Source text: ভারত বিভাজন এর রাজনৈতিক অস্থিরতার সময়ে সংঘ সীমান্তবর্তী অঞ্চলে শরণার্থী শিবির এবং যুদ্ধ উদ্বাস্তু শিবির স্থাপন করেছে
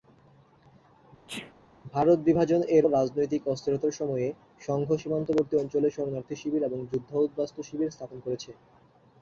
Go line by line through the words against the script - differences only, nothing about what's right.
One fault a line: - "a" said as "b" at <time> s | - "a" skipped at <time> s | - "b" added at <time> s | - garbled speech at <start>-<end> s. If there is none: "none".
none